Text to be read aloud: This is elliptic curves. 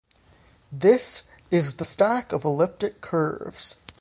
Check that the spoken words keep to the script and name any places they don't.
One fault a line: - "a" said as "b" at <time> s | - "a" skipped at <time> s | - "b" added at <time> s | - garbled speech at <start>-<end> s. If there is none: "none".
- "the stack of" added at 1.7 s